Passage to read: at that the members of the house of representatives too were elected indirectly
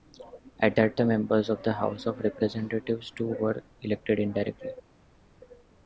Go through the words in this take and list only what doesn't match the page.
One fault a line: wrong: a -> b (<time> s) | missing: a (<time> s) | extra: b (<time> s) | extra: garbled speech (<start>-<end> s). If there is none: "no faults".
no faults